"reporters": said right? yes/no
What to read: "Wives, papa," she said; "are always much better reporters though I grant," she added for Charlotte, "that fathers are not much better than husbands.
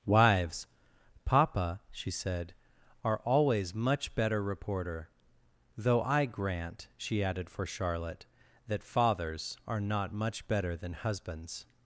no